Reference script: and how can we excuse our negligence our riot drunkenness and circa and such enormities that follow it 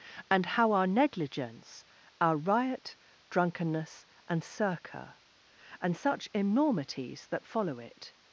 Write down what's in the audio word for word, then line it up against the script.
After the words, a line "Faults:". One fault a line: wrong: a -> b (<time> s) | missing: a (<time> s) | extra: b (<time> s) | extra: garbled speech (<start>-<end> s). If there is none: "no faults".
and how our negligence our riot drunkenness and circa and such enormities that follow it
Faults:
missing: can we excuse (0.7 s)